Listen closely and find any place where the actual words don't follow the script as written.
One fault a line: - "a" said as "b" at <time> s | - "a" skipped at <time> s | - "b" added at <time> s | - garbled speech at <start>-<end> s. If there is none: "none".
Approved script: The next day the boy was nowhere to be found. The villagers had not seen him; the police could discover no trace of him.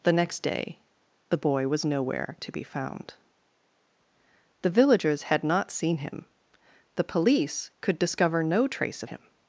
none